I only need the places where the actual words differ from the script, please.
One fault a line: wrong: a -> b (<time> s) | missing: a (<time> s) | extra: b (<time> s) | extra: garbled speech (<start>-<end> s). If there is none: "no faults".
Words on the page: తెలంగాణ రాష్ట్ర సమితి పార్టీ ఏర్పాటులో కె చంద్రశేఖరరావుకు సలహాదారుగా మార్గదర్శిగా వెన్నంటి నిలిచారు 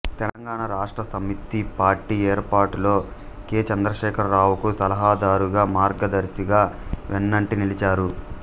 no faults